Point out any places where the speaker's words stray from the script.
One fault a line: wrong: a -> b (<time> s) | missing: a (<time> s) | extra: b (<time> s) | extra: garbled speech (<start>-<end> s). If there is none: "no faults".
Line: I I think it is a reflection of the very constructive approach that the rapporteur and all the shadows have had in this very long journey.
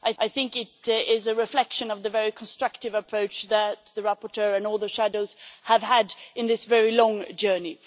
no faults